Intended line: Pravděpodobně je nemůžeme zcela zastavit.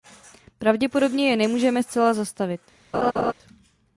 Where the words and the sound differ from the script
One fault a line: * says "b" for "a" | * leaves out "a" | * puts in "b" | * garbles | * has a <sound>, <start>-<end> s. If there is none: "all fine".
* has a laugh, 2.9-3.3 s